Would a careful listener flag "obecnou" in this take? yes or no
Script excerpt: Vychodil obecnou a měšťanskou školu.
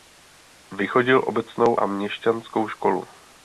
no